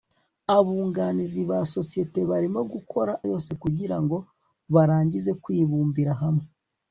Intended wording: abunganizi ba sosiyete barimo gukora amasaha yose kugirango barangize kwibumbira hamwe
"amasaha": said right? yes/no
no